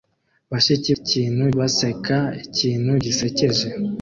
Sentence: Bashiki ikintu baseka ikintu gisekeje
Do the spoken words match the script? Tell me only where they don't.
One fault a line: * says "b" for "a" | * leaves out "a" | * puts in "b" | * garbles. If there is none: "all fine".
all fine